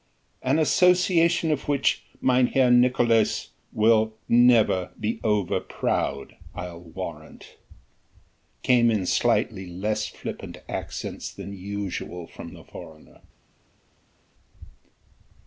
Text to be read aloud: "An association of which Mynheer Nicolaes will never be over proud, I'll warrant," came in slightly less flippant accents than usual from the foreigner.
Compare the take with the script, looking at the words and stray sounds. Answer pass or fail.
pass